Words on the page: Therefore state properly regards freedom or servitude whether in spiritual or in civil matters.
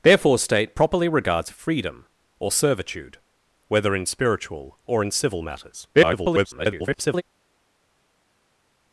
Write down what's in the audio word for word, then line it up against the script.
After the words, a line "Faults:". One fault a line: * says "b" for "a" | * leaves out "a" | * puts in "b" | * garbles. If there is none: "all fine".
Therefore state properly regards freedom or servitude whether in spiritual or in civil matters. [garbled]
Faults:
* garbles